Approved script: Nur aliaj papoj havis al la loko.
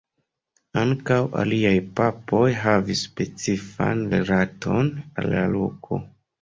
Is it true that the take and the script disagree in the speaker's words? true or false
true